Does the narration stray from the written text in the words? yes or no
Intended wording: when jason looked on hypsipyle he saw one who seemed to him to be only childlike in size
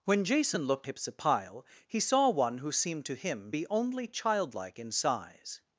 yes